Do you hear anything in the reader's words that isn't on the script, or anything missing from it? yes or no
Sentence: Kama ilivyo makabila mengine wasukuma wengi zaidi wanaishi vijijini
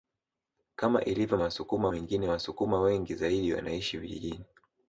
yes